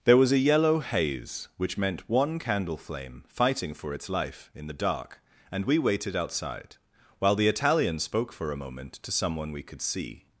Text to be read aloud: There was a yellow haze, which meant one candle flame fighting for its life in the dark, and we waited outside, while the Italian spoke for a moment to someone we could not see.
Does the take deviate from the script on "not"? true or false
true